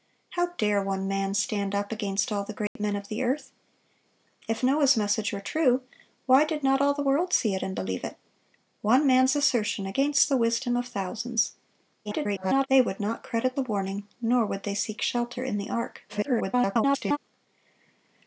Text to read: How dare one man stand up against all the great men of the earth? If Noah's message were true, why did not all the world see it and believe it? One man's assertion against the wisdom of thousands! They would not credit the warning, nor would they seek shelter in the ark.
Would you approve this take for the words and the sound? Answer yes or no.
no